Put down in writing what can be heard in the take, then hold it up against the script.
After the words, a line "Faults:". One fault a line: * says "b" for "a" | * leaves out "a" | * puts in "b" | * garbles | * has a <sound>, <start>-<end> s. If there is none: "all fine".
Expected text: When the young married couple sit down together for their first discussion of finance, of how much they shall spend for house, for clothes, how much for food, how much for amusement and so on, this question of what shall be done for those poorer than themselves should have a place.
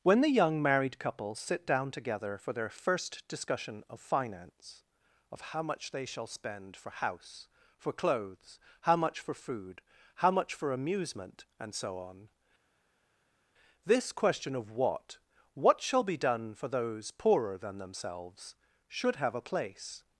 When the young married couple sit down together for their first discussion of finance, of how much they shall spend for house, for clothes, how much for food, how much for amusement and so on, this question of what what shall be done for those poorer than themselves should have a place.
Faults:
* puts in "what"